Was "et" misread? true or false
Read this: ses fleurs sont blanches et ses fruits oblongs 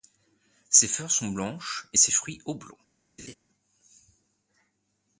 false